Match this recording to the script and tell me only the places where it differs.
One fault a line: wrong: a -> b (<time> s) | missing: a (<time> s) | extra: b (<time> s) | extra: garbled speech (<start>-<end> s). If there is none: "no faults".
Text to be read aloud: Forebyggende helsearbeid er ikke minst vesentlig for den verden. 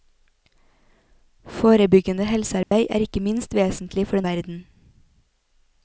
no faults